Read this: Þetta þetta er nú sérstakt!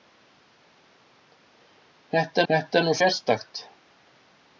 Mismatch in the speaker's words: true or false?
false